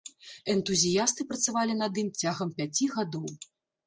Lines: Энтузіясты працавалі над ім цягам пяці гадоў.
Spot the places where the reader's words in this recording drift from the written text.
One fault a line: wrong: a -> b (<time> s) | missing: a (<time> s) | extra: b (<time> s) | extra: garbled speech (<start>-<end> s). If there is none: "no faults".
no faults